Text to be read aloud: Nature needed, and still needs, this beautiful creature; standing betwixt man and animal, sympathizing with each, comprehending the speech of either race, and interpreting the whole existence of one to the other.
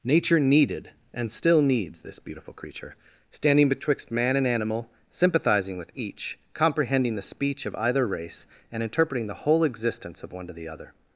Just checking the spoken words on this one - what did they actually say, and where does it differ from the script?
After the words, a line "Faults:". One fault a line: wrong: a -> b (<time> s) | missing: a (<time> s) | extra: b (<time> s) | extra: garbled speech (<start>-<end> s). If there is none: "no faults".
Nature needed, and still needs, this beautiful creature; standing betwixt man and animal, sympathizing with each, comprehending the speech of either race, and interpreting the whole existence of one to the other.
Faults:
no faults